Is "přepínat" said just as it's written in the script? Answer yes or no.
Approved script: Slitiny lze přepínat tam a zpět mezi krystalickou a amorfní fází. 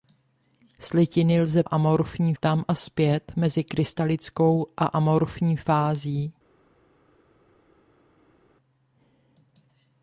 no